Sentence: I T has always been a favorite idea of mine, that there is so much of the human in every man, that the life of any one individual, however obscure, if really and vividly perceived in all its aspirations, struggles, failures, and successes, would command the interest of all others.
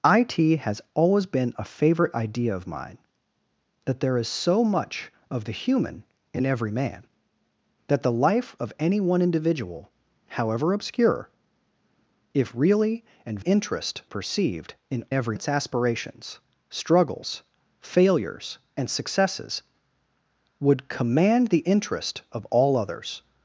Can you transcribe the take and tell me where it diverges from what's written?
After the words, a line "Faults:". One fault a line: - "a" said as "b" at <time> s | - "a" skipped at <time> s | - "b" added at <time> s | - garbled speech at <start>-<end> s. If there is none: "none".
I T has always been a favorite idea of mine, that there is so much of the human in every man, that the life of any one individual, however obscure, if really and interest perceived in every its aspirations, struggles, failures, and successes, would command the interest of all others.
Faults:
- "vividly" said as "interest" at 13.4 s
- "all" said as "every" at 15.1 s